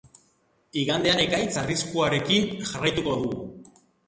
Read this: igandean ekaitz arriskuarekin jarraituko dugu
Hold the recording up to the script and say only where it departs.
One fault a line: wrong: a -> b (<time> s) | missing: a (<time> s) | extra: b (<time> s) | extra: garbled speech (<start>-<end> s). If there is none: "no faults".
no faults